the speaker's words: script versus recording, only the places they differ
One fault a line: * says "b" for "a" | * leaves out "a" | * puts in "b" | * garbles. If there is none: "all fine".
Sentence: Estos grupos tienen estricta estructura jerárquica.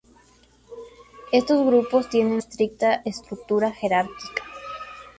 all fine